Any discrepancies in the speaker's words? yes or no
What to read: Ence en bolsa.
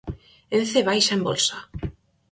yes